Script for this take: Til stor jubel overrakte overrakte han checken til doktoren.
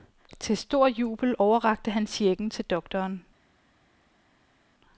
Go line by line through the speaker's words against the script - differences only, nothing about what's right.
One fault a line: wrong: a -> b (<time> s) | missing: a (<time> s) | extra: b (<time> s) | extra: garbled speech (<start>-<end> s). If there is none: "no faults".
missing: overrakte (1.9 s)